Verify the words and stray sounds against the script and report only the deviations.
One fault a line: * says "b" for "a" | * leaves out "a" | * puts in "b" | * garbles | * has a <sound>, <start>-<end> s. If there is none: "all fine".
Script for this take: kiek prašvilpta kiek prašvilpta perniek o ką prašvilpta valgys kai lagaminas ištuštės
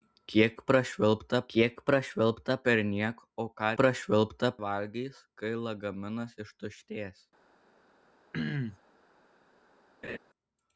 * has a throat clearing, 8.3-8.8 s
* has a laugh, 10.0-10.2 s